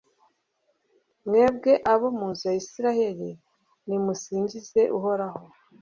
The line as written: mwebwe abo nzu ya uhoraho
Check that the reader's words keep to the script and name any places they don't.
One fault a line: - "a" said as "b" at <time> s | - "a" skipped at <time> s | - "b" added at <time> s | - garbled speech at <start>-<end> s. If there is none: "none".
- "mu" added at 2.2 s
- "israheli nimusingize" added at 2.6 s